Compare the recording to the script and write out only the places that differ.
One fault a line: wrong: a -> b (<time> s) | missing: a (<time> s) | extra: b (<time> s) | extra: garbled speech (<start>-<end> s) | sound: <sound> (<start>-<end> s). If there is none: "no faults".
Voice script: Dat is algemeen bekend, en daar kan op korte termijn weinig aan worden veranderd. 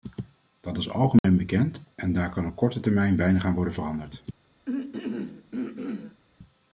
sound: dropout (1.2-1.2 s)
sound: throat clearing (4.6-6.2 s)